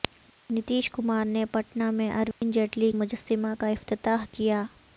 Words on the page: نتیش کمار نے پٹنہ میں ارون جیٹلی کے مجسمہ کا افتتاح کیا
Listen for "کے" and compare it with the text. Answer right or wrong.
wrong